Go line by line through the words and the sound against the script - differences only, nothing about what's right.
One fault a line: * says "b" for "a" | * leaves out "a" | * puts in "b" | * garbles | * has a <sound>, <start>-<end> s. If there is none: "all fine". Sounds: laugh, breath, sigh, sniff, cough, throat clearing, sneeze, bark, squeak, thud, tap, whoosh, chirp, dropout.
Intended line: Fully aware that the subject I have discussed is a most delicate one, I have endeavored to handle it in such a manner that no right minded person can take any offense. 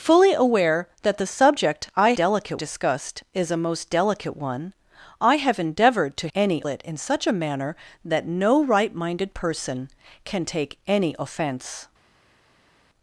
* says "delicate" for "have"
* says "any" for "handle"